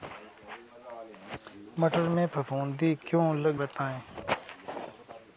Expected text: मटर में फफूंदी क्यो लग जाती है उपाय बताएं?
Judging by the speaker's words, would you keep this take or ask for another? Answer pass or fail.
fail